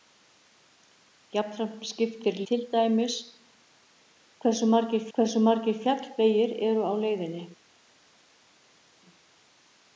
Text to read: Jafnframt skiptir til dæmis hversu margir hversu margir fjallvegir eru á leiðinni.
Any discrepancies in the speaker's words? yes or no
no